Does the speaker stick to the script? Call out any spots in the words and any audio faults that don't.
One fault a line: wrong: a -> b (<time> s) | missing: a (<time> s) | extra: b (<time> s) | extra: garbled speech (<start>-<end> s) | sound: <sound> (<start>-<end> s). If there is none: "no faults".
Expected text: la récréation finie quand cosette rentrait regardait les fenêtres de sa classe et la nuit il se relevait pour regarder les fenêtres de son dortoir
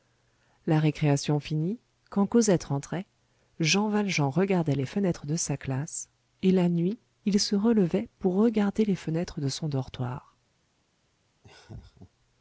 extra: jean valjean (3.6 s)
sound: laugh (11.4-12.1 s)